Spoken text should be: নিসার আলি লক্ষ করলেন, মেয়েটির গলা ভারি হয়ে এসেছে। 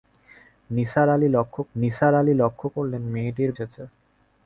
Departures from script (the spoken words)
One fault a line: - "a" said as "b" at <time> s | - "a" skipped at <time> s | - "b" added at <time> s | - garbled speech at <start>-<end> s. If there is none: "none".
- "করলেন মেয়েটির গলা ভারি হয়ে" said as "নিসার আলি লক্ষ করলেন মেয়েটির" at 1.7 s